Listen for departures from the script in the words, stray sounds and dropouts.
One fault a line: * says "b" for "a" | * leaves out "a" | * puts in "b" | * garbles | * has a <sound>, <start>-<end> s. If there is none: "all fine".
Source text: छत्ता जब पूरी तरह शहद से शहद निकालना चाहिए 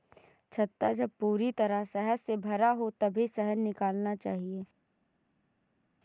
* puts in "भरा हो तभी"